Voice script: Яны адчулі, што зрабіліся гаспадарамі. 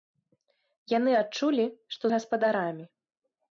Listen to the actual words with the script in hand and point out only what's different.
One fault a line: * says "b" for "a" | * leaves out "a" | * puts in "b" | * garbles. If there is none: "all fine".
* leaves out "зрабіліся"